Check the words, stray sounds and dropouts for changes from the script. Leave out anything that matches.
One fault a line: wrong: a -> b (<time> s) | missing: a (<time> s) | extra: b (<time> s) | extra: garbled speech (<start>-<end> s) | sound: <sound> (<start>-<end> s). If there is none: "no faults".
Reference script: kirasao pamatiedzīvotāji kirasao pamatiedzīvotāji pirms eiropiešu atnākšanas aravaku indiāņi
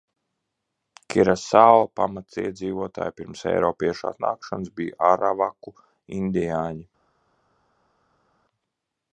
missing: kirasao pamatiedzīvotāji (3.2 s)
extra: bija (4.8 s)